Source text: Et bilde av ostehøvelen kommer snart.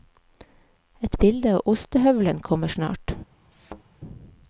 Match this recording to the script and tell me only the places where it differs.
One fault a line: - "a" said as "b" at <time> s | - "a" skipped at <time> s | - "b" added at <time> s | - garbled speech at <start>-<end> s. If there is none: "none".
none